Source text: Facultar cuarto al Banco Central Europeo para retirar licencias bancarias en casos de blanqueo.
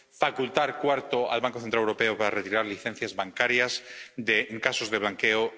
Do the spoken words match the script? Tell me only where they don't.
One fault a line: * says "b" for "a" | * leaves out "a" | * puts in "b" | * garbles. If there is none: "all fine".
all fine